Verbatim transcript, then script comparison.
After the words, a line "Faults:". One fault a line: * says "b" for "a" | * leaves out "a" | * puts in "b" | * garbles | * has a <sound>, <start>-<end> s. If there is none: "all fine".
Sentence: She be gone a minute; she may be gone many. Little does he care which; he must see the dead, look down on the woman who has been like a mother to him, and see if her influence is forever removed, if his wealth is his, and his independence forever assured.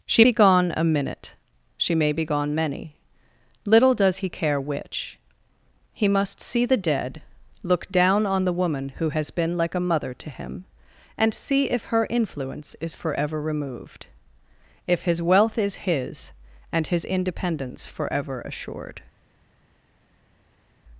She be gone a minute; she may be gone many. Little does he care which; he must see the dead, look down on the woman who has been like a mother to him, and see if her influence is forever removed, if his wealth is his, and his independence forever assured.
Faults:
all fine